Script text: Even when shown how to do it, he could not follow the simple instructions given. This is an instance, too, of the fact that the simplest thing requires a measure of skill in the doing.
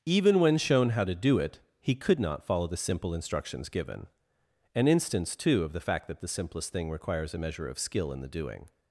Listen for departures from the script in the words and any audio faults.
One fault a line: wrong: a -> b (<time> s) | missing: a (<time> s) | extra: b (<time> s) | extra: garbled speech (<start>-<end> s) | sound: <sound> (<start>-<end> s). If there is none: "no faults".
missing: This is (4.1 s)